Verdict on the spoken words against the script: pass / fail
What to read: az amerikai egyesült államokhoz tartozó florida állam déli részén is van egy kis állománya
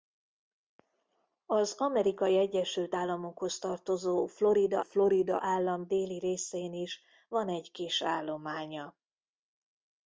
fail